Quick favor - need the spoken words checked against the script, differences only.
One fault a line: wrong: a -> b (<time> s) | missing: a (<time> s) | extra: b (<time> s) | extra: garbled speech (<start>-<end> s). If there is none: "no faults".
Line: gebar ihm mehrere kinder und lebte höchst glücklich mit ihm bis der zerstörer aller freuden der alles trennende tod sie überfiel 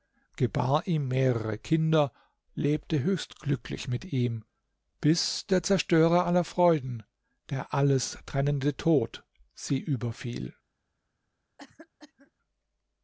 missing: und (2.1 s)